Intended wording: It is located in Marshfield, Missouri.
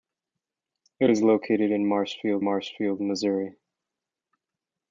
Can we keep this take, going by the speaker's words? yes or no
no